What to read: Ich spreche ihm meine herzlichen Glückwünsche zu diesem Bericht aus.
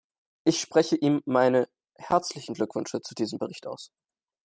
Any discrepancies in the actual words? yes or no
no